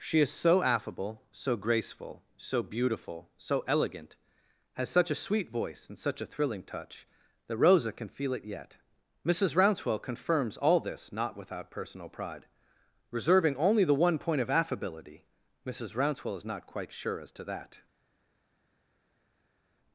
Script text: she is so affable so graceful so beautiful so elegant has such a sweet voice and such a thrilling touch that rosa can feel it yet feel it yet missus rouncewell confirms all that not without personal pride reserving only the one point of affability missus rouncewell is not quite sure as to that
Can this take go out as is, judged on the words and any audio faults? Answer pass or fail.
fail